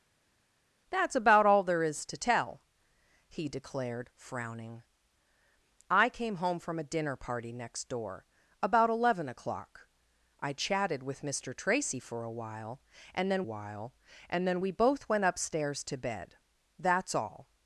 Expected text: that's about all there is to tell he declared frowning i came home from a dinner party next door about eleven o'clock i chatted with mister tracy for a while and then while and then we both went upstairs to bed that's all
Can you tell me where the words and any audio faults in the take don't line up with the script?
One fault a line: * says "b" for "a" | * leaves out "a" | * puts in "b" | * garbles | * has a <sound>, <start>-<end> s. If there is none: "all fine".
all fine